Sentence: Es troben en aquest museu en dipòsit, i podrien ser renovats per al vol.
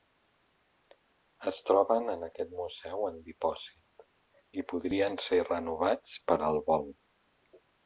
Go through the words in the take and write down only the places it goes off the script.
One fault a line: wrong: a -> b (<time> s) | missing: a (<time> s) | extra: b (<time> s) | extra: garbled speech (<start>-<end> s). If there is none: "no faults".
no faults